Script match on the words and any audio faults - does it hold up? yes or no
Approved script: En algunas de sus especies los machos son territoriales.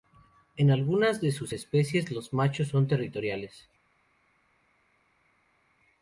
yes